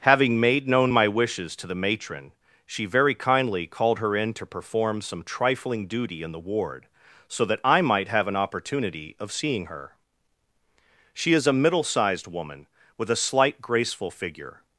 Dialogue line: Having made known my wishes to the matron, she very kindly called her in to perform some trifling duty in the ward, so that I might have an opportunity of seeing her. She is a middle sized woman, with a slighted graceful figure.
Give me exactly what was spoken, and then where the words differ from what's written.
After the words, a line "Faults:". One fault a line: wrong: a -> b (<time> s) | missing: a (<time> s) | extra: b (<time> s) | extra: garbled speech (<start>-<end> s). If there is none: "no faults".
Having made known my wishes to the matron, she very kindly called her in to perform some trifling duty in the ward, so that I might have an opportunity of seeing her. She is a middle sized woman, with a slight graceful figure.
Faults:
wrong: slighted -> slight (13.2 s)